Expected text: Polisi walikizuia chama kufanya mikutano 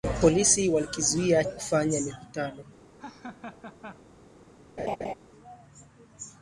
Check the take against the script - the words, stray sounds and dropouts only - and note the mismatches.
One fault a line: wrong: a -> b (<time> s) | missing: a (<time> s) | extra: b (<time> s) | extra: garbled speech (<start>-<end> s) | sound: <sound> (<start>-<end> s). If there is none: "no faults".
missing: chama (1.4 s)
sound: laugh (3.0-4.0 s)
sound: laugh (4.8-5.1 s)